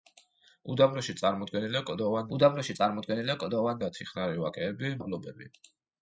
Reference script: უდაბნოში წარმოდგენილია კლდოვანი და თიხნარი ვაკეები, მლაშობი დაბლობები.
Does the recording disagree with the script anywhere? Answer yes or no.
yes